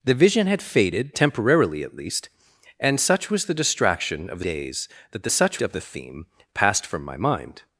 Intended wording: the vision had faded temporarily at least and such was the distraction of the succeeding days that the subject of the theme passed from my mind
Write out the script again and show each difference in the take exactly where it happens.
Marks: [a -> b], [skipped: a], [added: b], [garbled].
the vision had faded temporarily at least and such was the distraction of the [skipped: succeeding] days that the [subject -> such] of the theme passed from my mind